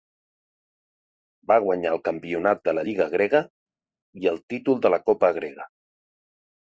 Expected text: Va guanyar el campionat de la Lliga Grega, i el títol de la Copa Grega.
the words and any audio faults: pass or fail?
pass